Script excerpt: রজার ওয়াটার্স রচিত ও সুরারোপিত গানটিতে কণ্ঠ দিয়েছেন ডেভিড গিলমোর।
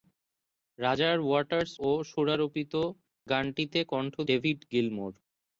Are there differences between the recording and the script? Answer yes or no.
yes